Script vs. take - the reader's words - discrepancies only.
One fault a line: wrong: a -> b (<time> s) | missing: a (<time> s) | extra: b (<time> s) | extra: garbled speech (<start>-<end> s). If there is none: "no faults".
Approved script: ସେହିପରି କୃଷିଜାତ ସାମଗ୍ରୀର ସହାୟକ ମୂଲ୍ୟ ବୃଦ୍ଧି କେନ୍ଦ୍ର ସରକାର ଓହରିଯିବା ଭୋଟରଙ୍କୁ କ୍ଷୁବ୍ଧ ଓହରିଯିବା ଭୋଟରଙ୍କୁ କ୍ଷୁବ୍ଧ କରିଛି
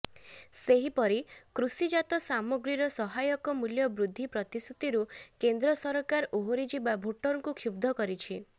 extra: ପ୍ରତିଶ୍ରୁତିରୁ (4.3 s)
missing: ଓହରିଯିବା ଭୋଟରଙ୍କୁ କ୍ଷୁବ୍ଧ (8.0 s)